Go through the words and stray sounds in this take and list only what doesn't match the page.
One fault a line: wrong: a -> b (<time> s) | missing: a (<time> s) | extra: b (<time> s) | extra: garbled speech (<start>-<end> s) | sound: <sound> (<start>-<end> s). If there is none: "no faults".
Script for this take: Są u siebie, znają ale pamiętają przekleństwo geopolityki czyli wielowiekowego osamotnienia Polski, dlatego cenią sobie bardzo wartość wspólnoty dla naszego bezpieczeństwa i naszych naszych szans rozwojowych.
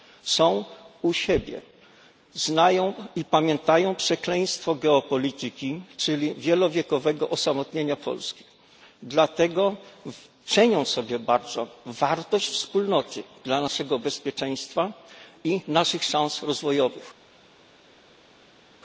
wrong: ale -> i (3.1 s)
missing: naszych (16.0 s)